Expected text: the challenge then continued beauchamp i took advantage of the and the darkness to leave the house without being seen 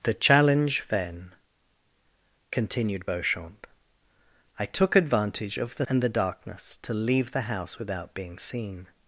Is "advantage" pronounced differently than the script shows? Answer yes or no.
no